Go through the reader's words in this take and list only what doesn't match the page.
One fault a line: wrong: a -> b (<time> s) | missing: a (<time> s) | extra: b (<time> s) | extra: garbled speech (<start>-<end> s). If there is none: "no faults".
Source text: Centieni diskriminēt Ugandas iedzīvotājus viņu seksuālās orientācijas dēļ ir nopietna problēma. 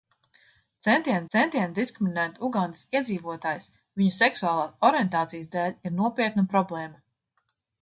extra: centieni (1.3 s)